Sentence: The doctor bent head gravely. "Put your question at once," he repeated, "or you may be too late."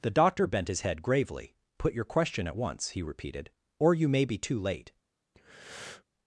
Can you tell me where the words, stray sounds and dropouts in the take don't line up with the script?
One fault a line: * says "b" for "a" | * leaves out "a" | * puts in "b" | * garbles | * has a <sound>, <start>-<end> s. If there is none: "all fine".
* puts in "his"
* has a breath, 5.3-6.0 s